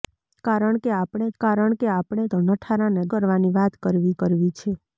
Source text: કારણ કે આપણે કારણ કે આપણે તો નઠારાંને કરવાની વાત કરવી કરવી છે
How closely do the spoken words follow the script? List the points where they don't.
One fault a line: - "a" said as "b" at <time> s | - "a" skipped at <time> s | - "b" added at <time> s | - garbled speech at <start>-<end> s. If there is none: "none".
none